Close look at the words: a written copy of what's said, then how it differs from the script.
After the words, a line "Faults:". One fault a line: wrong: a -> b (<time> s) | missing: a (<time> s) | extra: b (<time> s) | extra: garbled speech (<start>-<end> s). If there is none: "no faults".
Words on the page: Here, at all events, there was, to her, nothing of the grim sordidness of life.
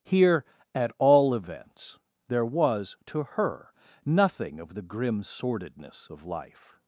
Here, at all events, there was, to her, nothing of the grim sordidness of life.
Faults:
no faults